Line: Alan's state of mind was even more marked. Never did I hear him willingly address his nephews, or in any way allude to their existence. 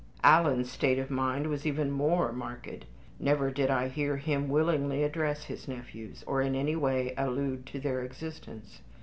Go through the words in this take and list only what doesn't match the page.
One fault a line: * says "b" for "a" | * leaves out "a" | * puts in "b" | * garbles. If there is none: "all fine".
all fine